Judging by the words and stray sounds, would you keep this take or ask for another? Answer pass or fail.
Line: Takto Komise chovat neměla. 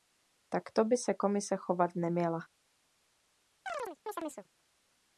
fail